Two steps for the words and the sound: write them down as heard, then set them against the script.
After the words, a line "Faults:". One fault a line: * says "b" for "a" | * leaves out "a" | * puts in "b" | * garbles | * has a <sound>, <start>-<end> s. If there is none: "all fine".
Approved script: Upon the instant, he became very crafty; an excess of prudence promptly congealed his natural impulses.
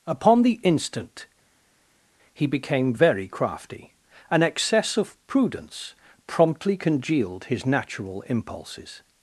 Upon the instant, he became very crafty; an excess of prudence promptly congealed his natural impulses.
Faults:
all fine